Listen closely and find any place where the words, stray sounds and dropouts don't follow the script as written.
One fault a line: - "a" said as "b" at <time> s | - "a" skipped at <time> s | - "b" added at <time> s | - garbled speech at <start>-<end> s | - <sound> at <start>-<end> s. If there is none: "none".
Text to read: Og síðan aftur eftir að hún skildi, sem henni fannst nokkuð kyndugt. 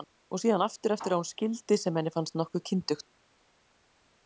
none